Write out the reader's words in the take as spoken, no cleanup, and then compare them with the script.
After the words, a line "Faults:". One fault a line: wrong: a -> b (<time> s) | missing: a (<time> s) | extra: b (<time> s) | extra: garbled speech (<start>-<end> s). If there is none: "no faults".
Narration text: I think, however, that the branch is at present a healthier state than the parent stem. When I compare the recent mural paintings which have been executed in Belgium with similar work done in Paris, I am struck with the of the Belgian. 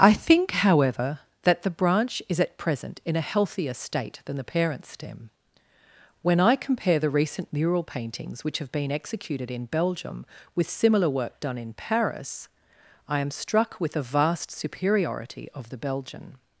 I think, however, that the branch is at present in a healthier state than the parent stem. When I compare the recent mural paintings which have been executed in Belgium with similar work done in Paris, I am struck with the vast superiority of the Belgian.
Faults:
extra: in (3.0 s)
extra: vast superiority (14.0 s)